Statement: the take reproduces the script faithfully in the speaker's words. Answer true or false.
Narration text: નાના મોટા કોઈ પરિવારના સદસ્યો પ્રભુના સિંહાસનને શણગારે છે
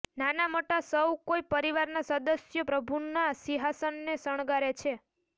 false